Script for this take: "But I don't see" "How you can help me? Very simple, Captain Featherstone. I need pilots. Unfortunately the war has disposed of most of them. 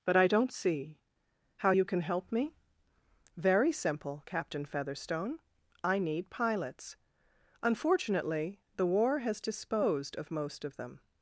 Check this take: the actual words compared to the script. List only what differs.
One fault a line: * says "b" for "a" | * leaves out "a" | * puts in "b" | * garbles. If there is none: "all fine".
all fine